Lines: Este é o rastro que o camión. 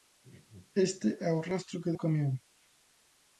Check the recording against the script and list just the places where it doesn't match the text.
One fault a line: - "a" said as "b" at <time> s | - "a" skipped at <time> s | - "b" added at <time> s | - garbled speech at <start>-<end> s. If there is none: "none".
none